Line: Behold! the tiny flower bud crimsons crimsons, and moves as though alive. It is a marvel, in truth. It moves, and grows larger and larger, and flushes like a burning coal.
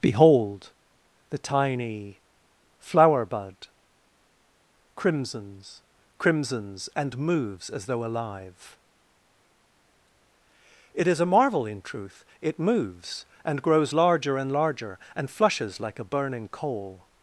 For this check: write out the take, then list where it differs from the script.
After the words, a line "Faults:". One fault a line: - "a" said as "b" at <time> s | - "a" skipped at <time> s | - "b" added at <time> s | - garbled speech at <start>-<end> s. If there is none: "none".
Behold! the tiny flower bud crimsons crimsons, and moves as though alive. It is a marvel, in truth. It moves, and grows larger and larger, and flushes like a burning coal.
Faults:
none